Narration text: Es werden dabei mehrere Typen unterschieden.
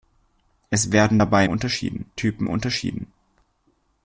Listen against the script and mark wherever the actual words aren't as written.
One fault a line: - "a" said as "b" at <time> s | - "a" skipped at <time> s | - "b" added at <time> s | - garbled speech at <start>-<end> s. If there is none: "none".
- "mehrere" said as "unterschieden" at 1.4 s